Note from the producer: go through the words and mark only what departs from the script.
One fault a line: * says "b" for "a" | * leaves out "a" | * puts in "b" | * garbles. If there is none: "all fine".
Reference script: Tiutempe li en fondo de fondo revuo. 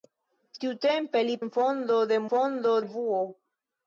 all fine